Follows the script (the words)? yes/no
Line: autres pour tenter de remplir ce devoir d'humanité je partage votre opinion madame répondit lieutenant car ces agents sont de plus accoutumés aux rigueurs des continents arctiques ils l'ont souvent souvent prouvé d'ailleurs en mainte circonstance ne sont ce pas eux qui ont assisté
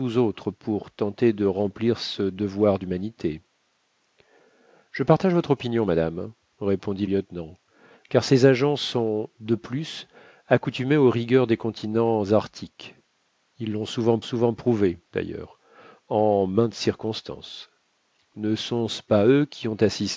yes